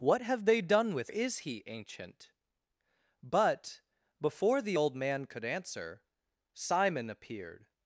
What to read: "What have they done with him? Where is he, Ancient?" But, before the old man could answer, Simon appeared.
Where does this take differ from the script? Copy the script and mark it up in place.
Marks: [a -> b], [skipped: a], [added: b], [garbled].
"What have they done with [skipped: him? Where] is he, Ancient?" But, before the old man could answer, Simon appeared.